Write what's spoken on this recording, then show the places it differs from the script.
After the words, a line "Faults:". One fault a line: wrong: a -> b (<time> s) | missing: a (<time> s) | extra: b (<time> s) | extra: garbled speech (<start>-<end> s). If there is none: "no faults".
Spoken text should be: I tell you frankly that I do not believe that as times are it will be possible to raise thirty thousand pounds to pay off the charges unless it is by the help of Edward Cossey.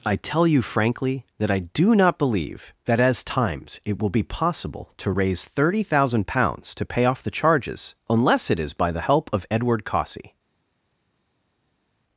I tell you frankly that I do not believe that as times it will be possible to raise thirty thousand pounds to pay off the charges unless it is by the help of Edward Cossey.
Faults:
missing: are (3.8 s)